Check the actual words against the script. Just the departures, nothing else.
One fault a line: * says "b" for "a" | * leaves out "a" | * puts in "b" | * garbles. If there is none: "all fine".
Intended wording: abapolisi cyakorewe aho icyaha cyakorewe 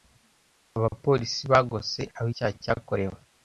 * says "bagose" for "cyakorewe"